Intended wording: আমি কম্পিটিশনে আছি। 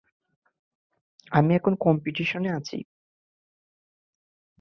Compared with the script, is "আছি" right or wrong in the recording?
right